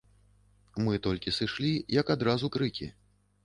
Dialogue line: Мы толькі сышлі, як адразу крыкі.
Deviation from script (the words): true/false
false